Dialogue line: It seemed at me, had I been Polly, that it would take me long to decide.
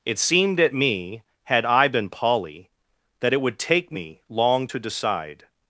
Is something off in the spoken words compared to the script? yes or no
no